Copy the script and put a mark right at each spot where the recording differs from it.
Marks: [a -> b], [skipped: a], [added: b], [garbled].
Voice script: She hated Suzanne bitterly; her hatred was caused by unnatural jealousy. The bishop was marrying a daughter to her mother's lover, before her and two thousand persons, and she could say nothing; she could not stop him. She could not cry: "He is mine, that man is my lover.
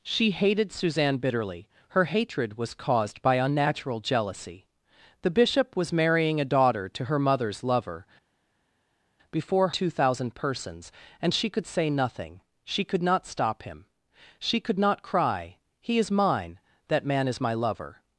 She hated Suzanne bitterly; her hatred was caused by unnatural jealousy. The bishop was marrying a daughter to her mother's lover, before [skipped: her and] two thousand persons, and she could say nothing; she could not stop him. She could not cry: "He is mine, that man is my lover.